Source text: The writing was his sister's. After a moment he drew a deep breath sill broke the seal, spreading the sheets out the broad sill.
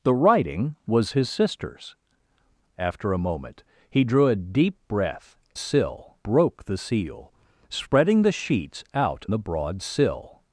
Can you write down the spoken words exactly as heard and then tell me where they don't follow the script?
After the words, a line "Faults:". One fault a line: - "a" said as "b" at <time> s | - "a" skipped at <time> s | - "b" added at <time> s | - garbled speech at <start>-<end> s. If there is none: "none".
The writing was his sister's. After a moment he drew a deep breath sill broke the seal, spreading the sheets out the broad sill.
Faults:
none